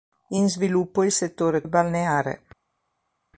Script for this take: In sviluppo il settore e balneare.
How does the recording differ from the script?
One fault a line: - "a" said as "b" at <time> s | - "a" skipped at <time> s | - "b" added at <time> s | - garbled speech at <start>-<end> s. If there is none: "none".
none